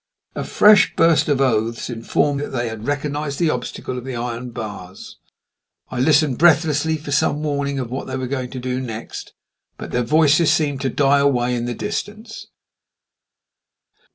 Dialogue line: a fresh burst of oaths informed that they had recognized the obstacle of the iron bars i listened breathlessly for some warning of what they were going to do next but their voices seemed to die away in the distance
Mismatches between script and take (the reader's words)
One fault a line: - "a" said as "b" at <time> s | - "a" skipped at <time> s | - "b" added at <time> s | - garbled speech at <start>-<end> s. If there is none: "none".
none